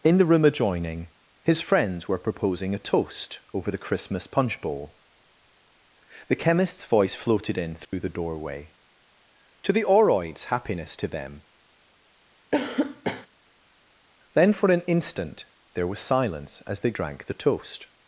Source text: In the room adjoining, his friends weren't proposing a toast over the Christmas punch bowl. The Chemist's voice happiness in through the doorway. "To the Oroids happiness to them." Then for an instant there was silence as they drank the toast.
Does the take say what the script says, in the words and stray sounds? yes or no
no